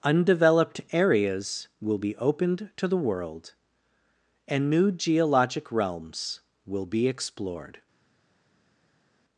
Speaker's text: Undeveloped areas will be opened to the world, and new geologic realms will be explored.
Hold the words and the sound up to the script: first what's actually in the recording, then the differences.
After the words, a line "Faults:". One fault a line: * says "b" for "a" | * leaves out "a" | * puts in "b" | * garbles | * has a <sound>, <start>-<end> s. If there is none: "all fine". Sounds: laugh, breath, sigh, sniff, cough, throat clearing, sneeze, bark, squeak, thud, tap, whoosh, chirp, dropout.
Undeveloped areas will be opened to the world, and new geologic realms will be explored.
Faults:
all fine